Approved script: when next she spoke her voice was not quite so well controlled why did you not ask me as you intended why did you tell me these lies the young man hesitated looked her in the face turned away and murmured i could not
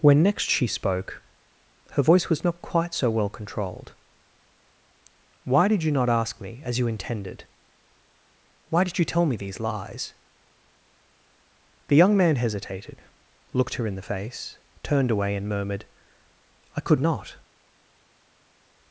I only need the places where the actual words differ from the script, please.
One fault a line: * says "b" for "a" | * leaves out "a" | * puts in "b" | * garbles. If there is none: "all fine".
all fine